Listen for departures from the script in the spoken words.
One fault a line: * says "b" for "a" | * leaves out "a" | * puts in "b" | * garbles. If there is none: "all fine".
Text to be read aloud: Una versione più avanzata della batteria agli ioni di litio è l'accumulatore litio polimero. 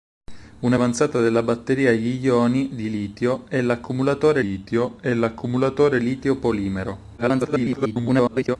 * leaves out "versione più"
* puts in "è l'accumulatore litio"
* garbles